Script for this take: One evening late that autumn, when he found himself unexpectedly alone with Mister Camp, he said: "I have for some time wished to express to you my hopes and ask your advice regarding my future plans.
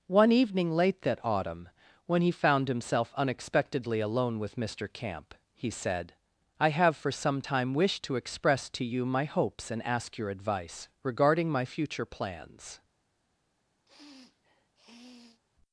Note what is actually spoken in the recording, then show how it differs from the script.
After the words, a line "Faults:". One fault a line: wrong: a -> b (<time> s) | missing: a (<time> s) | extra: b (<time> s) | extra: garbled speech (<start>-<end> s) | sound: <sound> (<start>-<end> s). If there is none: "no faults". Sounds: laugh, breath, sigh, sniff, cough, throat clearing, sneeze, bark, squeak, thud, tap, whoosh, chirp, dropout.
One evening late that autumn, when he found himself unexpectedly alone with Mister Camp, he said: "I have for some time wished to express to you my hopes and ask your advice regarding my future plans.
Faults:
sound: sniff (13.9-15.4 s)